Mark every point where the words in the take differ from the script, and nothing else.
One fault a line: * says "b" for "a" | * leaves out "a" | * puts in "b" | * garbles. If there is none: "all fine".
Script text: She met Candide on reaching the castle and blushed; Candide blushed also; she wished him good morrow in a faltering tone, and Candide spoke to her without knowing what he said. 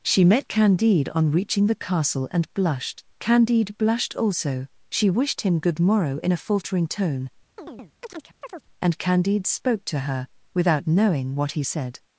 all fine